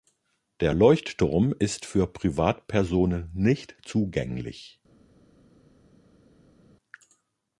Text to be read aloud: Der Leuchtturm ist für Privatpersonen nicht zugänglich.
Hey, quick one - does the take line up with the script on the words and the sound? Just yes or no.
yes